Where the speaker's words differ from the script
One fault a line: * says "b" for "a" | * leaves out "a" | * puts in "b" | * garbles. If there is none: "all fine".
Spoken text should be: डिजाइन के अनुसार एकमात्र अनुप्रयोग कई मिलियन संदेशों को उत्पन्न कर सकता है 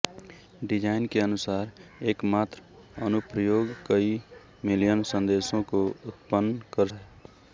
* leaves out "सकता"